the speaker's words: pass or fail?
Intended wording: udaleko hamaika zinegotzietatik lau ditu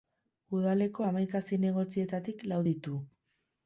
pass